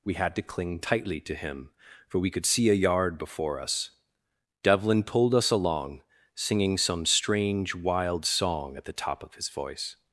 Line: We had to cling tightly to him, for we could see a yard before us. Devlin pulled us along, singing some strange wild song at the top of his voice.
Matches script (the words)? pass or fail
pass